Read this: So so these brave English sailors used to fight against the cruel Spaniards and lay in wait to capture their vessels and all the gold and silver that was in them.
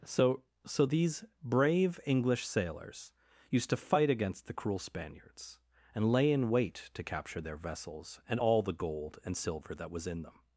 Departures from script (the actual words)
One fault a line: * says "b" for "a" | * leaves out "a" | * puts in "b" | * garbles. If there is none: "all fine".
all fine